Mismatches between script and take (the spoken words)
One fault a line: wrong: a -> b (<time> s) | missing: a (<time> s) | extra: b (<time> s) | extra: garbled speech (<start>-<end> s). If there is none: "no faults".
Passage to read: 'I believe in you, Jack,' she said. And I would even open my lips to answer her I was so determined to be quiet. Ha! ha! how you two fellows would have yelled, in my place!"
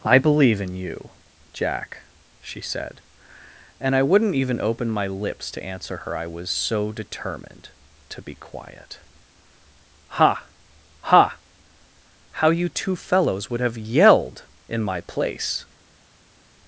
wrong: would -> wouldn't (4.0 s)